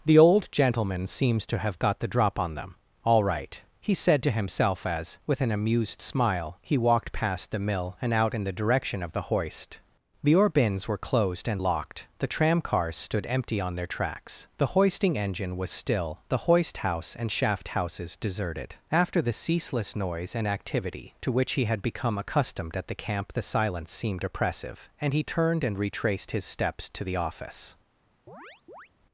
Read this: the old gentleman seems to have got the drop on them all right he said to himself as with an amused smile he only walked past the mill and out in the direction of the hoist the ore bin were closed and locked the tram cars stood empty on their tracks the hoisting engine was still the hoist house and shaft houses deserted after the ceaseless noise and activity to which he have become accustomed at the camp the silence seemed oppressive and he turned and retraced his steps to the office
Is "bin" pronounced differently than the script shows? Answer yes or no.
yes